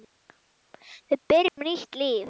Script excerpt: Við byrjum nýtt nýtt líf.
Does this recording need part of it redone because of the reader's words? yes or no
yes